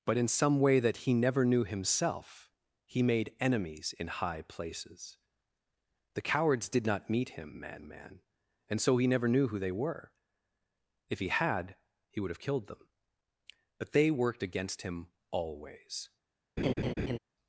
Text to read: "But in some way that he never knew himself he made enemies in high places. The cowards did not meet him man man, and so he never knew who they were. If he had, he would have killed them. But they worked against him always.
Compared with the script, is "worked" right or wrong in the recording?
right